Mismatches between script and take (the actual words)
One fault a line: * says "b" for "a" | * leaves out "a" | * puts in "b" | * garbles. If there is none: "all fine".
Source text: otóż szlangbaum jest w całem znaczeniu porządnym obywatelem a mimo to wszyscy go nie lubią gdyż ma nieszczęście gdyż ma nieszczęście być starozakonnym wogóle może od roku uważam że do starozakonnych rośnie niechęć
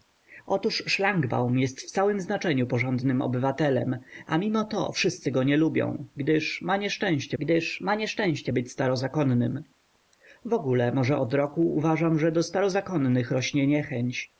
all fine